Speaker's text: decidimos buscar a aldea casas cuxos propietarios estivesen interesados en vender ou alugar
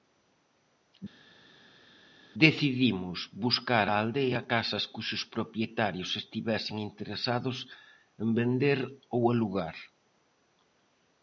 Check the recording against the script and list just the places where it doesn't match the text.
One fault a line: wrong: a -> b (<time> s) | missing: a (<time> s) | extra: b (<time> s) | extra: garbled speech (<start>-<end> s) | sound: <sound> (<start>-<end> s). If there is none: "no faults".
no faults